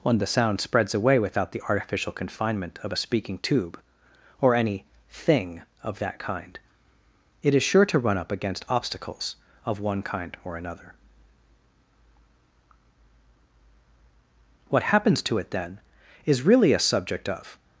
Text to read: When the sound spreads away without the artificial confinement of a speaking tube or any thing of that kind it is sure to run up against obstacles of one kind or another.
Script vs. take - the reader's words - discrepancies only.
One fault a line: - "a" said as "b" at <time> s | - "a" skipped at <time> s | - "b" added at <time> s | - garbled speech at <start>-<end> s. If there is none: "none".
- "What happens to it then is really a subject of" added at 14.7 s